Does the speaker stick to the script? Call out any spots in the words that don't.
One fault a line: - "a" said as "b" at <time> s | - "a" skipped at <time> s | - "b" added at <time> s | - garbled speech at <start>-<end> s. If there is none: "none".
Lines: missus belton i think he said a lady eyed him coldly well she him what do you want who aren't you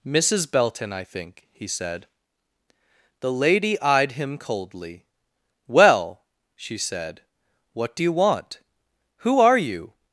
- "a" said as "the" at 3.2 s
- "him" said as "said" at 6.8 s
- "aren't" said as "are" at 9.4 s